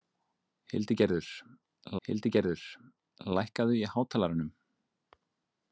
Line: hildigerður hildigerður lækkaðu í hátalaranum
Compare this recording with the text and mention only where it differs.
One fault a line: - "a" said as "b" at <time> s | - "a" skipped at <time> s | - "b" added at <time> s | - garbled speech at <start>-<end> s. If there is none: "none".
none